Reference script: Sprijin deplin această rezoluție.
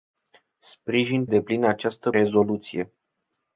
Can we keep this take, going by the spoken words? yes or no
yes